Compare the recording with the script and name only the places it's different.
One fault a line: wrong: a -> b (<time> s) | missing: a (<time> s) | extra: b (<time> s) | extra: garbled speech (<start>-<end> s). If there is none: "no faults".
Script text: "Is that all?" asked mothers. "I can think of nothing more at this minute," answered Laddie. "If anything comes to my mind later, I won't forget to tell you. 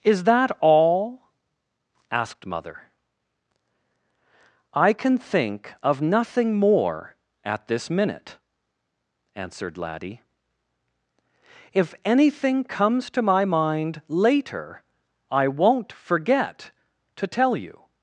wrong: mothers -> mother (2.5 s)